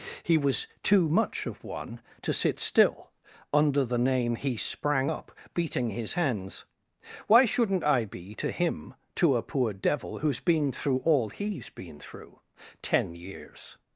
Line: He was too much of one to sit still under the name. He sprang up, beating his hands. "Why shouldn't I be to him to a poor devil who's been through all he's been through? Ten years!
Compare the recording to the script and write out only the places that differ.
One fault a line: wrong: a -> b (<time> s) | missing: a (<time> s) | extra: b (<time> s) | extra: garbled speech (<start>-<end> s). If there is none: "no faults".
no faults